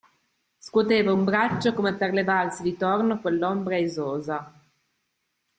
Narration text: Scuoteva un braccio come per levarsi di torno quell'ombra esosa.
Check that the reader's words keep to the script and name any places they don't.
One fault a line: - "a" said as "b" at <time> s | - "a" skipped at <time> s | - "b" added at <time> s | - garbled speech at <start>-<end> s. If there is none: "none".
none